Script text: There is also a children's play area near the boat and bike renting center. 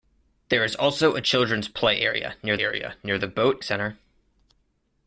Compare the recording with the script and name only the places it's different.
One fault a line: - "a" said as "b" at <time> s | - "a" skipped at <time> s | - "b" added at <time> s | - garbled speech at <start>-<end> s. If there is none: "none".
- "area near" added at 2.6 s
- "and bike renting" skipped at 3.6 s